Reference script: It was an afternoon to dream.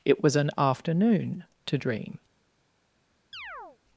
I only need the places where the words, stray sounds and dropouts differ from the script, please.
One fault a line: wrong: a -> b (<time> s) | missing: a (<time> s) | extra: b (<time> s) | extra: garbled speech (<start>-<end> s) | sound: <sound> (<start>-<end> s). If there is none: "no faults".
sound: chirp (3.3-3.8 s)